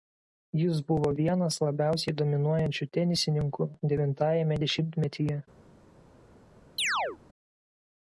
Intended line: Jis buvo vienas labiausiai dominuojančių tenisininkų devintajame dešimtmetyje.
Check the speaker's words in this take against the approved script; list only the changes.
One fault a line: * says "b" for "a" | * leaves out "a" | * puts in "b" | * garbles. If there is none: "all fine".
all fine